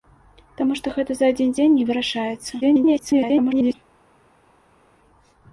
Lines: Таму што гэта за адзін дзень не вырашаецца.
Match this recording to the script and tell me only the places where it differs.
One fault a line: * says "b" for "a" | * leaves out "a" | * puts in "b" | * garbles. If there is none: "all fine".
* garbles